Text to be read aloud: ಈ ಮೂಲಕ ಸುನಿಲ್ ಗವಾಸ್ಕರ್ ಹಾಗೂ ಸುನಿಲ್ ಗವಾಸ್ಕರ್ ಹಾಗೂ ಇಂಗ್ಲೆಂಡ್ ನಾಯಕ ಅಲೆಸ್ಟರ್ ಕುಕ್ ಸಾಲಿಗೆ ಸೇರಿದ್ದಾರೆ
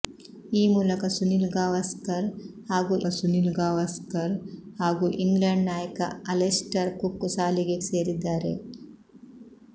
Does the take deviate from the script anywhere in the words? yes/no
no